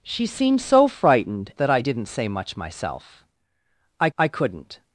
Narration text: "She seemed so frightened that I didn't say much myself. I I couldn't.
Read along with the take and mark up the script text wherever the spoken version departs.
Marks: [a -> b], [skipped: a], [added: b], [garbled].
"She seemed so frightened that I didn't say much myself. I I couldn't.